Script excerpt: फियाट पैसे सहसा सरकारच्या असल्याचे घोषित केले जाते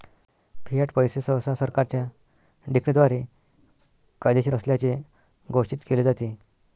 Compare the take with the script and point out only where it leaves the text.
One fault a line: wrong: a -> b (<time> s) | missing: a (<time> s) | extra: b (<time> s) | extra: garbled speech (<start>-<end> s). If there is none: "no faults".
extra: डिक्रीद्वारे कायदेशीर (2.7 s)